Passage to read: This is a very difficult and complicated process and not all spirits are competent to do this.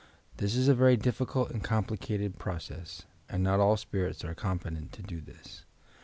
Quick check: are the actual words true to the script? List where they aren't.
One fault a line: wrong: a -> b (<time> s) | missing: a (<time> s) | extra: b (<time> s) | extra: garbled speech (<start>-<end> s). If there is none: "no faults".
no faults